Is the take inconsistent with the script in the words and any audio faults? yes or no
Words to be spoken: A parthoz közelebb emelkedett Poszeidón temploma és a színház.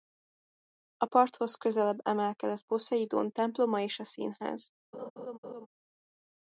yes